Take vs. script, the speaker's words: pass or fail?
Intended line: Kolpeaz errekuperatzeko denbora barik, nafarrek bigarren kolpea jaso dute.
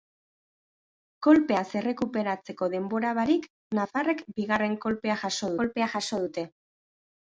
fail